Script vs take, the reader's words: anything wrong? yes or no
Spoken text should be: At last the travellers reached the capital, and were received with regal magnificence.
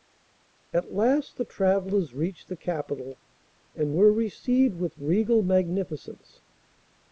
no